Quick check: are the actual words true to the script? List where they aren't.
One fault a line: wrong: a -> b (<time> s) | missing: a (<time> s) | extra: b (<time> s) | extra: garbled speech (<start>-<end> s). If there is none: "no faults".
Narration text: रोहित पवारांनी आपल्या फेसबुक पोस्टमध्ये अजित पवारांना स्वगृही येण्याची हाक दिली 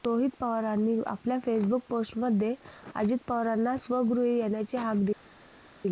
no faults